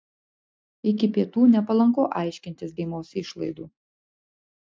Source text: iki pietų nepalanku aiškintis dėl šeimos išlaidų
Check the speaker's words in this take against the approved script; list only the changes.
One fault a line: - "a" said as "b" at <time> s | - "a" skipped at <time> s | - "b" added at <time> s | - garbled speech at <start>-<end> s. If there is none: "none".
- "dėl" skipped at 2.8 s